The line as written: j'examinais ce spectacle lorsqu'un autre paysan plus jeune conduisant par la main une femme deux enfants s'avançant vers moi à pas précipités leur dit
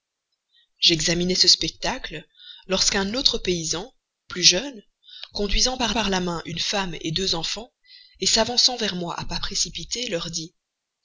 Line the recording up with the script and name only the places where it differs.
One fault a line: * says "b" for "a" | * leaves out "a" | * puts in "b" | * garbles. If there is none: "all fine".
* puts in "par"